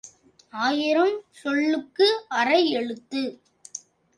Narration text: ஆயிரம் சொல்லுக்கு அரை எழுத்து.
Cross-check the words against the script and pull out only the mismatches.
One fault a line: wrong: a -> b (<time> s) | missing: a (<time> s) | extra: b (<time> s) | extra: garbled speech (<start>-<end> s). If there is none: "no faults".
no faults